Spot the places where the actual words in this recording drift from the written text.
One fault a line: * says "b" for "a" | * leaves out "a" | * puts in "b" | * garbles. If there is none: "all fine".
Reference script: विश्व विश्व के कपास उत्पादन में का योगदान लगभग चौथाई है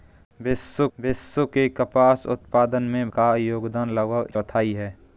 all fine